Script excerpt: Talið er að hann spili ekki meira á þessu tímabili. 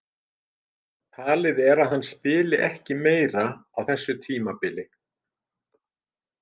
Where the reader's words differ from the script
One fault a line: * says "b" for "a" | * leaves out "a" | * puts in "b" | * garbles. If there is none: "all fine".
all fine